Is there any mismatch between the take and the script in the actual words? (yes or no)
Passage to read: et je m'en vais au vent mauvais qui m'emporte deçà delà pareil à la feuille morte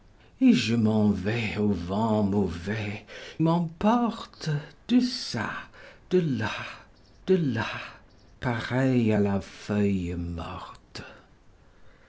yes